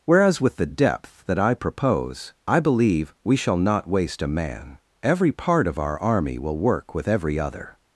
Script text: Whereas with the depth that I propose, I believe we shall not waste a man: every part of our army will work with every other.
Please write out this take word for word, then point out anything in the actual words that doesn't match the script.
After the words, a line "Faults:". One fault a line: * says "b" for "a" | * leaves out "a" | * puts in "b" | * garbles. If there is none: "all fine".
Whereas with the depth that I propose, I believe we shall not waste a man: every part of our army will work with every other.
Faults:
all fine